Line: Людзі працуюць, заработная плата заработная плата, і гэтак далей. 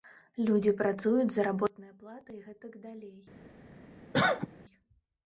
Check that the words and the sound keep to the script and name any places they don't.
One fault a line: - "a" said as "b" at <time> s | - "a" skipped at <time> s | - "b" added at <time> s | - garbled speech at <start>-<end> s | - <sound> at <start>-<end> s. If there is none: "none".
- "заработная плата" skipped at 2.3 s
- cough at 4.1-4.5 s